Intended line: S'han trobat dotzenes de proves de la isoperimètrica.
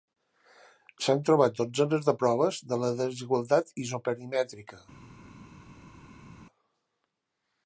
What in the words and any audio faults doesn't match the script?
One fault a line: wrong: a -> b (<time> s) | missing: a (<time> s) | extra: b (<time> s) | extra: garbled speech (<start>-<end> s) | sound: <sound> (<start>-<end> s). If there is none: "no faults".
extra: desigualtat (3.0 s)